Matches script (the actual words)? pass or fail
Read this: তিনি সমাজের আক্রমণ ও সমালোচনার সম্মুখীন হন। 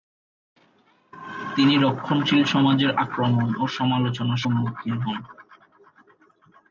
fail